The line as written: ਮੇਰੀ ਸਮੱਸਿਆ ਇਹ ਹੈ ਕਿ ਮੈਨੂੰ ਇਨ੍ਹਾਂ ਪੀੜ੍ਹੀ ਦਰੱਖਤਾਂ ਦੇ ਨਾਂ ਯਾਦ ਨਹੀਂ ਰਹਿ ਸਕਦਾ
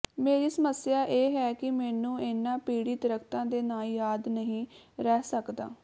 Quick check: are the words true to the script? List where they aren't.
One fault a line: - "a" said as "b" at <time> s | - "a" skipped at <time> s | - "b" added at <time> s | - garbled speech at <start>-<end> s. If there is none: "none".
none